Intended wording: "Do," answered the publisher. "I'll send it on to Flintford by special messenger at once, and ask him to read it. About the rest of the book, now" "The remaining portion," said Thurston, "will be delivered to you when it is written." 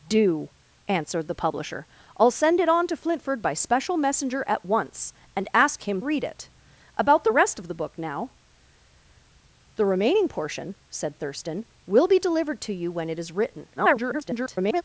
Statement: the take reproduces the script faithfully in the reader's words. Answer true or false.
false